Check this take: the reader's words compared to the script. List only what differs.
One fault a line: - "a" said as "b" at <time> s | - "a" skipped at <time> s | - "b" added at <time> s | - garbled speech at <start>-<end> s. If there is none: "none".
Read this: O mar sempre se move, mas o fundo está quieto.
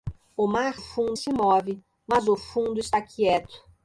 - "sempre" said as "fundo" at 0.7 s